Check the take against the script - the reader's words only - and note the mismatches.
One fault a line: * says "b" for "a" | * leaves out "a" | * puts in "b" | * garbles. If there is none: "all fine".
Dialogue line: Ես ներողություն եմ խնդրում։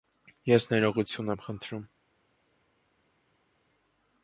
all fine